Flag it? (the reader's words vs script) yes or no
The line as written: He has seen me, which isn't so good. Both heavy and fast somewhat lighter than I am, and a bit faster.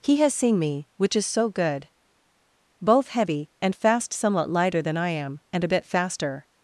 yes